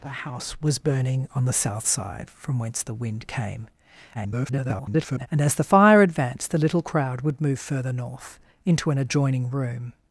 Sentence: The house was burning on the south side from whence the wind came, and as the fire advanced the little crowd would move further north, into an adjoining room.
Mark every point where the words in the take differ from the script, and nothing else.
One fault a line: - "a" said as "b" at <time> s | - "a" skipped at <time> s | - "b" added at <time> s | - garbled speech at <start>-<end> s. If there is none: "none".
- garbled speech at 4.1-5.3 s